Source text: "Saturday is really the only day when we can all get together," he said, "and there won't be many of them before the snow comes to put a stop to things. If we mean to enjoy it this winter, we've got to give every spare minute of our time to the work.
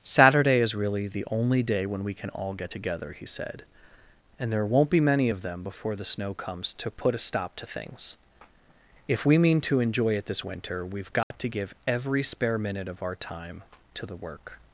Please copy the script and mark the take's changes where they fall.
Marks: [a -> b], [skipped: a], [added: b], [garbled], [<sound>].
"Saturday is really the only day when we can all get together," he said, "and there won't be many of them before the snow comes to put a stop to things. If we mean to enjoy it this winter, we've got [dropout] to give every spare minute of our time to the work.